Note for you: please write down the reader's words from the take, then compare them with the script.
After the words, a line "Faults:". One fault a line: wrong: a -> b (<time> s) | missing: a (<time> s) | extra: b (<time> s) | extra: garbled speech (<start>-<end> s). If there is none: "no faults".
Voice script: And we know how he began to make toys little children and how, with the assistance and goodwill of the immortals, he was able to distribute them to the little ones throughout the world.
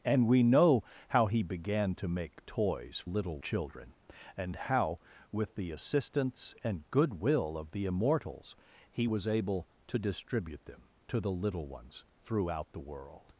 And we know how he began to make toys little children and how, with the assistance and goodwill of the immortals, he was able to distribute them to the little ones throughout the world.
Faults:
no faults